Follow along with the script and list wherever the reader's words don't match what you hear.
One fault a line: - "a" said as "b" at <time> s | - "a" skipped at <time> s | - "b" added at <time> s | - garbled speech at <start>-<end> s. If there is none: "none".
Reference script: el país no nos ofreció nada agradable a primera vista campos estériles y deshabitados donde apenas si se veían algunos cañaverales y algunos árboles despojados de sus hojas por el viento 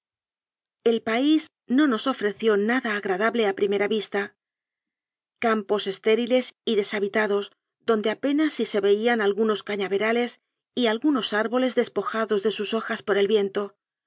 none